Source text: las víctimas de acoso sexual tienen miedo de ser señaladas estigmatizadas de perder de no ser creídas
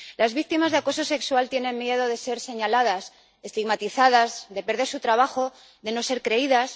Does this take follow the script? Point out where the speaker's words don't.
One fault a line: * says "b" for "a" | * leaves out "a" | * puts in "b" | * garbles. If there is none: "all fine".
* puts in "su trabajo"